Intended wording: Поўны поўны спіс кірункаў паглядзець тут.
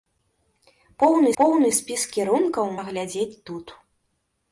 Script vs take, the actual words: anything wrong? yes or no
no